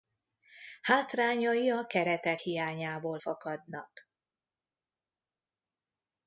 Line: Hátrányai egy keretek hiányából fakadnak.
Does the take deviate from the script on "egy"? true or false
true